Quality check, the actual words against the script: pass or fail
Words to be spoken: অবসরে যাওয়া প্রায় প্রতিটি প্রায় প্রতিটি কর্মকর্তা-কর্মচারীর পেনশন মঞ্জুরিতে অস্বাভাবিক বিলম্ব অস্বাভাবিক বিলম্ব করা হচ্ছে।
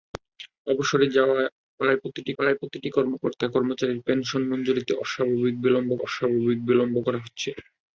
pass